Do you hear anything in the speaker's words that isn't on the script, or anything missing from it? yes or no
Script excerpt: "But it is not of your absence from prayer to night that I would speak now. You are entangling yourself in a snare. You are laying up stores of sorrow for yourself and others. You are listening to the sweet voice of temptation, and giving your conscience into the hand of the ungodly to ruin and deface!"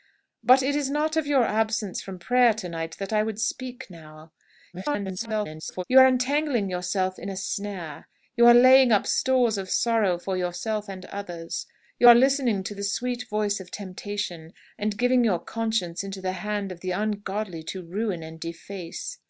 yes